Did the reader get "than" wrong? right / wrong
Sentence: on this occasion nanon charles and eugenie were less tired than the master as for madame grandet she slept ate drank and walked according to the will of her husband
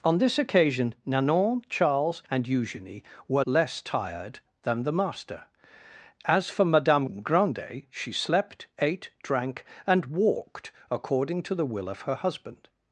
right